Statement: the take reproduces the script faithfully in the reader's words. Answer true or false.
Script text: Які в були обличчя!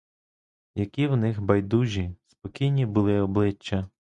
false